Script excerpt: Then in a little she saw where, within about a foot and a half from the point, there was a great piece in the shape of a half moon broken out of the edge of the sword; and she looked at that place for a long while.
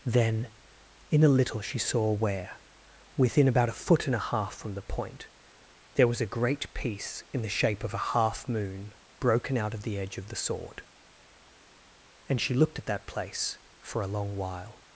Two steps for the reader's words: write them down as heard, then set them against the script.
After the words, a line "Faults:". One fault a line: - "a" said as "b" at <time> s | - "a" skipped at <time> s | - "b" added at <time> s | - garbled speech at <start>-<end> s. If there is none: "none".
Then in a little she saw where, within about a foot and a half from the point, there was a great piece in the shape of a half moon broken out of the edge of the sword; and she looked at that place for a long while.
Faults:
none